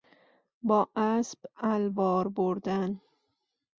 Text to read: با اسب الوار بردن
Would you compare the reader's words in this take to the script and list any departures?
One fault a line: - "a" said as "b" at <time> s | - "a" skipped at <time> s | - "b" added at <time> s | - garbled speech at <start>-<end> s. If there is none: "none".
none